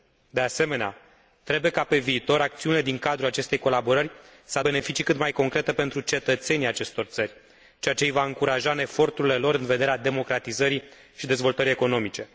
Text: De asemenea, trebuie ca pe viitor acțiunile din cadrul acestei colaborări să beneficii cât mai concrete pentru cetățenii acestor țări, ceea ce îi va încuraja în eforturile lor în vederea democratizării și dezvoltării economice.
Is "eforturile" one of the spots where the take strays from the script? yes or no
no